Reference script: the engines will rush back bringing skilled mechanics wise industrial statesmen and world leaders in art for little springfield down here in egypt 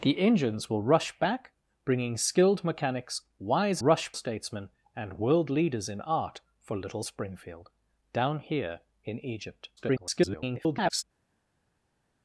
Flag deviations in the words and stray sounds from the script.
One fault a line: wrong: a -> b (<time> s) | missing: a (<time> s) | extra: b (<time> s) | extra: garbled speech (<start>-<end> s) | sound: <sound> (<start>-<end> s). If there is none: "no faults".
wrong: industrial -> rush (3.8 s)
extra: garbled speech (9.8-11.0 s)